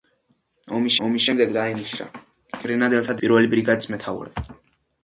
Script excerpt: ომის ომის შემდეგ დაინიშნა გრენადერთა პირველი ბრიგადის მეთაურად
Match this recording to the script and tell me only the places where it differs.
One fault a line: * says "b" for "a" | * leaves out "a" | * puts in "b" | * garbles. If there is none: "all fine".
all fine